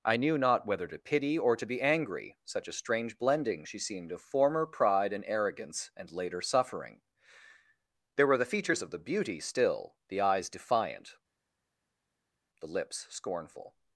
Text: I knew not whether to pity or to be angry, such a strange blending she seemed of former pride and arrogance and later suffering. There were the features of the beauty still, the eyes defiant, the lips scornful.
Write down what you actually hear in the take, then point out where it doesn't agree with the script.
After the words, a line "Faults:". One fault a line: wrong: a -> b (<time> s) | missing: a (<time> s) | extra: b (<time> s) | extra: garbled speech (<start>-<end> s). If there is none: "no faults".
I knew not whether to pity or to be angry, such a strange blending she seemed of former pride and arrogance and later suffering. There were the features of the beauty still, the eyes defiant, the lips scornful.
Faults:
no faults